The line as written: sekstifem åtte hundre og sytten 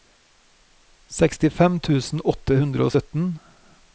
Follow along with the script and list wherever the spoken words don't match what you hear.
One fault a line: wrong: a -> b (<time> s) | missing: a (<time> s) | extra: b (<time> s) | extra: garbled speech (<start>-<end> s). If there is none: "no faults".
extra: tusen (1.9 s)